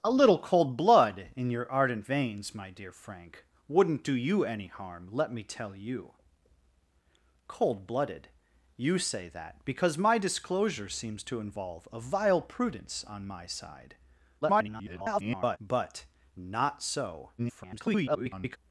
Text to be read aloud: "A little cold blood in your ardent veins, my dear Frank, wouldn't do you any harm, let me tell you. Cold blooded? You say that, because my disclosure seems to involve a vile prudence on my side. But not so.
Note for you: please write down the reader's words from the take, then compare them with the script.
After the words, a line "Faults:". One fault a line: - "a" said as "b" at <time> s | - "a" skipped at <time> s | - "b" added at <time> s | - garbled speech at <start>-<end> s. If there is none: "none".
"A little cold blood in your ardent veins, my dear Frank, wouldn't do you any harm, let me tell you. Cold blooded? You say that, because my disclosure seems to involve a vile prudence on my side. [garbled] But not so. [garbled]
Faults:
- garbled speech at 14.4-15.6 s
- garbled speech at 17.4-18.6 s